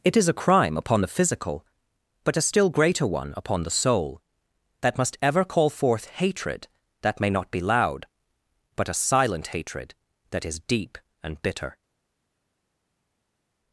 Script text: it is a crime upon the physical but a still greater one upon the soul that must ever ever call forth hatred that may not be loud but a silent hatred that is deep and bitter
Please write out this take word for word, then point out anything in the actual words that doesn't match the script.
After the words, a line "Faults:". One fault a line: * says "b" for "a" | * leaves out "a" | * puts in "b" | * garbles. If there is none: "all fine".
it is a crime upon the physical but a still greater one upon the soul that must ever call forth hatred that may not be loud but a silent hatred that is deep and bitter
Faults:
* leaves out "ever"